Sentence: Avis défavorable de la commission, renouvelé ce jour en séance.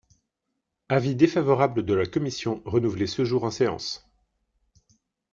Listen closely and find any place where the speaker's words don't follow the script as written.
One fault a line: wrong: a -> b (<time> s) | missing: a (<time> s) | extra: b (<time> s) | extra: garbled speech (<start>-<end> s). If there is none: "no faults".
no faults